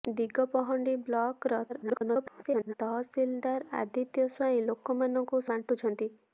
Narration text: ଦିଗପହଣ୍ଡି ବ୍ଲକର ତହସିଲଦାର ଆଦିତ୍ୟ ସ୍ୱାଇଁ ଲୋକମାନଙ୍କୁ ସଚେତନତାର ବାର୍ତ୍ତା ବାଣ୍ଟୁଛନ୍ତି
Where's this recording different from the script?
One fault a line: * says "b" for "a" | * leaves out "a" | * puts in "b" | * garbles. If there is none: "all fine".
* garbles
* leaves out "ସଚେତନତାର ବାର୍ତ୍ତା"